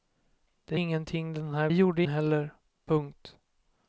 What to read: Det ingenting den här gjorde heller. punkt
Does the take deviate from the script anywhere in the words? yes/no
no